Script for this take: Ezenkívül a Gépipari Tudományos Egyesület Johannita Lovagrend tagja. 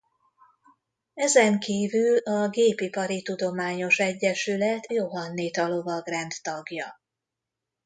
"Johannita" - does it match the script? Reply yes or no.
yes